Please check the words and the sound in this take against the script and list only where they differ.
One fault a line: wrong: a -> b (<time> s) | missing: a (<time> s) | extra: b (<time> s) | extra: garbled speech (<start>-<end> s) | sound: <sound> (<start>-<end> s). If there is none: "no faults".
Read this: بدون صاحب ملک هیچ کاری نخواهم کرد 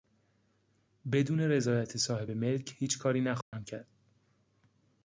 extra: رضایت (1.4 s)
sound: dropout (3.4-3.5 s)